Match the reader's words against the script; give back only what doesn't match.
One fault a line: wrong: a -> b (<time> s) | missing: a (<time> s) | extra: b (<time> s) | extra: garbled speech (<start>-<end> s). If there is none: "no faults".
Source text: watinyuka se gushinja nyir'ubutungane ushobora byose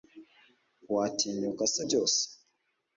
missing: gushinja nyir'ubutungane ushobora (1.8 s)